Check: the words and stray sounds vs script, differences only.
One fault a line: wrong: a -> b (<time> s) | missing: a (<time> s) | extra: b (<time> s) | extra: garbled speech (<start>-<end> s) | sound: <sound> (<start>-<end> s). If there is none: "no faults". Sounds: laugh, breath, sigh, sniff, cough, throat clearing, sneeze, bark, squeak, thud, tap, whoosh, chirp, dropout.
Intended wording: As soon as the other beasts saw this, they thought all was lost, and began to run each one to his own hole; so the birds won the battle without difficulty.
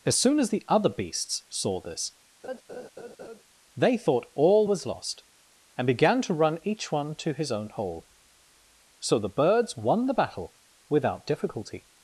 sound: laugh (2.4-3.4 s)